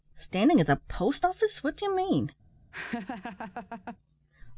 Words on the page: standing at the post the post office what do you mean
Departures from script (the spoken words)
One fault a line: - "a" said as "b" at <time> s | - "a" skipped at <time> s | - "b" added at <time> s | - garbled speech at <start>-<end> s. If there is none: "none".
- "the post" skipped at 1.3 s